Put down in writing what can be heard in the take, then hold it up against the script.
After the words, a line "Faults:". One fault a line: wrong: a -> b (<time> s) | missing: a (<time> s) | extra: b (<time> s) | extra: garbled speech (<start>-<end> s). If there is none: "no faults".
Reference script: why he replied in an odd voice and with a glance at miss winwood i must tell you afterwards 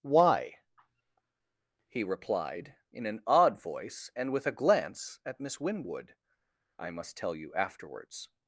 why he replied in an odd voice and with a glance at miss winwood i must tell you afterwards
Faults:
no faults